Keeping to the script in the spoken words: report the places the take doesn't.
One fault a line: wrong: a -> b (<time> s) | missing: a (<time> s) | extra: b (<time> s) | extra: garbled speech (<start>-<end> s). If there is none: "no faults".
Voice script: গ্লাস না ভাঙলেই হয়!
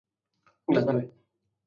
missing: ভাঙলেই (0.9 s)